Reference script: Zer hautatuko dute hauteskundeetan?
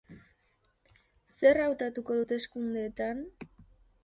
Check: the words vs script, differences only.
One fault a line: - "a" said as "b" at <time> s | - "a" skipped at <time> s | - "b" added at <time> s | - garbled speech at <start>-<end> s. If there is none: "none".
- "dute" skipped at 2.2 s